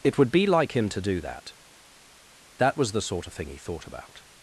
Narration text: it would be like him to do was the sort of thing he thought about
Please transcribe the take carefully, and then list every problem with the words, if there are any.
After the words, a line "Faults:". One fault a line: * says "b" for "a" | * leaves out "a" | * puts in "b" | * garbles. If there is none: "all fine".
it would be like him to do that that was the sort of thing he thought about
Faults:
* puts in "that that"